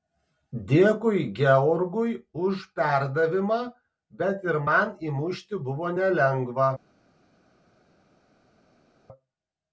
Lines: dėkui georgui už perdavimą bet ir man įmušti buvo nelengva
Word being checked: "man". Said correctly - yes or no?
yes